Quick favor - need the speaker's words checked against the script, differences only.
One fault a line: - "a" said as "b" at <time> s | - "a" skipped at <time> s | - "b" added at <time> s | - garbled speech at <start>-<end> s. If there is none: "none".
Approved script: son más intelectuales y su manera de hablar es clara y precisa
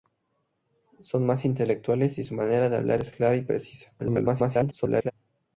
- garbled speech at 4.0-5.1 s